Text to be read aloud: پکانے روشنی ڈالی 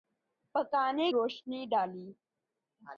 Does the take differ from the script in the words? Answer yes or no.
no